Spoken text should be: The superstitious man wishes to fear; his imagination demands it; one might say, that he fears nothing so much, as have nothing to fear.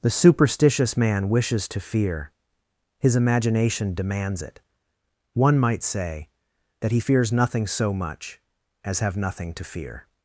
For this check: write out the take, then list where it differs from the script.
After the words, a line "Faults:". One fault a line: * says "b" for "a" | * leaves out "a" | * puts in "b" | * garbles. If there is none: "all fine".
The superstitious man wishes to fear; his imagination demands it; one might say, that he fears nothing so much, as have nothing to fear.
Faults:
all fine